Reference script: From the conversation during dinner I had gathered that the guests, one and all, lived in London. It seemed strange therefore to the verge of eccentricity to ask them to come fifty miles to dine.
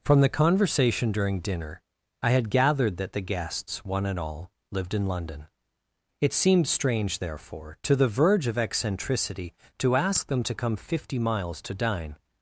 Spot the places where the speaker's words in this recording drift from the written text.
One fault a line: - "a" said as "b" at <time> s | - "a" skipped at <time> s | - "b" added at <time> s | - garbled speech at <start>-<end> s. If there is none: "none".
none